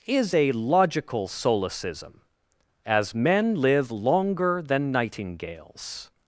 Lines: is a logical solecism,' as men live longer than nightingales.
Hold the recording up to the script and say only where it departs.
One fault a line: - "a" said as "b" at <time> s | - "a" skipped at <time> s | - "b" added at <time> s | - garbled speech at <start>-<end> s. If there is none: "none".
none